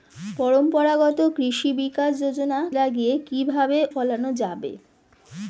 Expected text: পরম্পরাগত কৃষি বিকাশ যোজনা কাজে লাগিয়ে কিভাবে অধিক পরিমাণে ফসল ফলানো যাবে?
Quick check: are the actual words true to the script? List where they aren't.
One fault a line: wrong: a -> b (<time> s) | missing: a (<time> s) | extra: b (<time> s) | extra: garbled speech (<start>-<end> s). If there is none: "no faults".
missing: কাজে (2.6 s)
missing: অধিক পরিমাণে ফসল (3.8 s)